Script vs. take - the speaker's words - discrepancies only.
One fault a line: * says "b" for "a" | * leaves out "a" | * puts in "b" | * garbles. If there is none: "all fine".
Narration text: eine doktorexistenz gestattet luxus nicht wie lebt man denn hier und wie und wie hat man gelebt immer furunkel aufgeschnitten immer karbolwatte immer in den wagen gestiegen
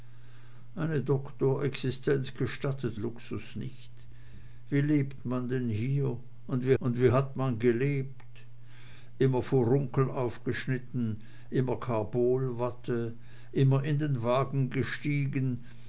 all fine